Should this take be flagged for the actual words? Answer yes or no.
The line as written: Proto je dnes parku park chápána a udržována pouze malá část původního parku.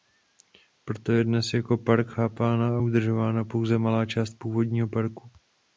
yes